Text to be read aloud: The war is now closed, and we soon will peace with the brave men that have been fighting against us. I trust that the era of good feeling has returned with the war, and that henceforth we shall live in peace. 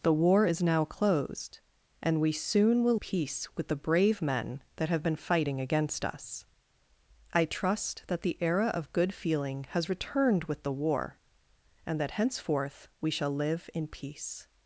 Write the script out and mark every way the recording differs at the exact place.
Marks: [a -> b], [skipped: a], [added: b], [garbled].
The war is now closed, and we soon will peace with the brave men that have been fighting against us. I trust that the era of good feeling has returned with the war, and that henceforth we shall live in peace.